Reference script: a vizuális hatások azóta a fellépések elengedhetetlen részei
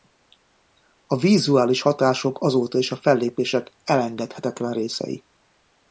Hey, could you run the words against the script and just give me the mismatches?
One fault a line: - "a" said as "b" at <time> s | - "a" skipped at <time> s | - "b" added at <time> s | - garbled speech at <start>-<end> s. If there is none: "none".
- "is" added at 2.8 s